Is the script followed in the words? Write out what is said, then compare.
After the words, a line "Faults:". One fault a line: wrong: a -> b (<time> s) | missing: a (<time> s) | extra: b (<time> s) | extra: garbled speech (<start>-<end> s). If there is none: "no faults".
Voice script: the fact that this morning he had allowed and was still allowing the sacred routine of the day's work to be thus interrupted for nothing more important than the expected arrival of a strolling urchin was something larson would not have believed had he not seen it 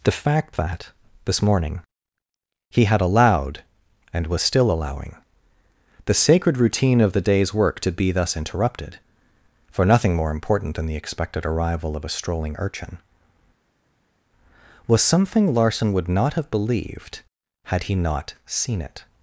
the fact that this morning he had allowed and was still allowing the sacred routine of the day's work to be thus interrupted for nothing more important than the expected arrival of a strolling urchin was something larson would not have believed had he not seen it
Faults:
no faults